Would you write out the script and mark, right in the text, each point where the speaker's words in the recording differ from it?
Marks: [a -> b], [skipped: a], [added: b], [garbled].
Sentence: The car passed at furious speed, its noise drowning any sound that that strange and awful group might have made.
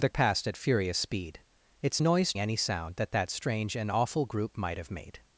The [skipped: car] passed at furious speed, its noise [skipped: drowning] any sound that that strange and awful group might have made.